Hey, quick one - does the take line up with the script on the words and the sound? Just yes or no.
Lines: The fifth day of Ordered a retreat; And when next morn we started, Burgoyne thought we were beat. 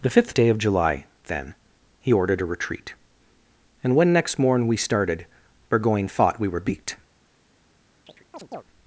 no